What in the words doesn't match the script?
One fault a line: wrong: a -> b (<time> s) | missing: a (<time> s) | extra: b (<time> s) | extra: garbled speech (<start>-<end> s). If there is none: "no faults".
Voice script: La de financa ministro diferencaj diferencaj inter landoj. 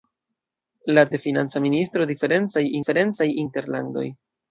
no faults